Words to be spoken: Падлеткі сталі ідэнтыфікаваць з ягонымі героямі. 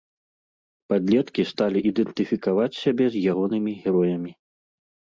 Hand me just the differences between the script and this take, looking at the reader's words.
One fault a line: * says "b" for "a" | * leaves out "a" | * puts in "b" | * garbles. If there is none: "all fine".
* puts in "сябе"